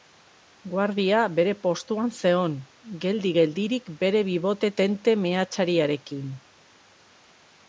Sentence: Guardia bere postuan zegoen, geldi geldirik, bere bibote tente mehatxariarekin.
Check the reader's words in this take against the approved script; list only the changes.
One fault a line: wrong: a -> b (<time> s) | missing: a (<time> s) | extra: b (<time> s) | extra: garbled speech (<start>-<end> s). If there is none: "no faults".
no faults